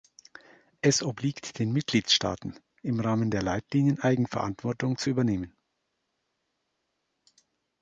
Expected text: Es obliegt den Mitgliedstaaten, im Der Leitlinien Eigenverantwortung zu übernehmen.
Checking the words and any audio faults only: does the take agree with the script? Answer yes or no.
no